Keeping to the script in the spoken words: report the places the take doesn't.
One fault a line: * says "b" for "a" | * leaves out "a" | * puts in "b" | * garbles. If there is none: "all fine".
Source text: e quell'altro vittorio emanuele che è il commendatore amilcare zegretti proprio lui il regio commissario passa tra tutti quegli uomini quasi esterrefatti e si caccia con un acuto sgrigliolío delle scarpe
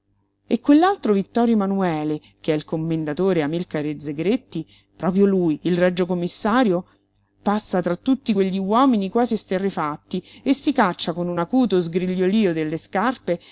all fine